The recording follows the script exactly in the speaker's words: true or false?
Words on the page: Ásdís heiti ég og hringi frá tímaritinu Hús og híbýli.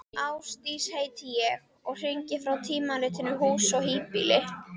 true